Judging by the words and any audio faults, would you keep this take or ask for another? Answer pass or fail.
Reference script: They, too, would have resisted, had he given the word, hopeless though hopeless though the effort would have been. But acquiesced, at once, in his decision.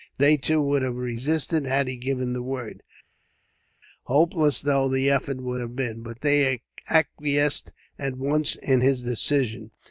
fail